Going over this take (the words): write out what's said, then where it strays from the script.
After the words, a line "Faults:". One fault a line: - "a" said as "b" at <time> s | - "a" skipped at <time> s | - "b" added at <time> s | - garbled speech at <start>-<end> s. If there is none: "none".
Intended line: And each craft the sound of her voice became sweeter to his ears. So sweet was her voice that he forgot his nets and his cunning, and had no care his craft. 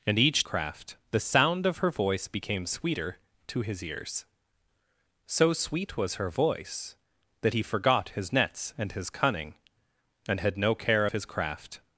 And each craft the sound of her voice became sweeter to his ears. So sweet was her voice that he forgot his nets and his cunning, and had no care his craft.
Faults:
none